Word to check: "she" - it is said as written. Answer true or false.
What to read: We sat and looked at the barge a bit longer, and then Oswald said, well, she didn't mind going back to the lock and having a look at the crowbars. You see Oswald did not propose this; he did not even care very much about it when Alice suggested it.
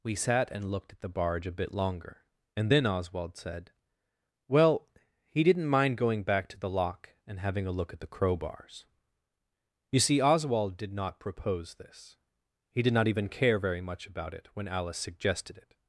false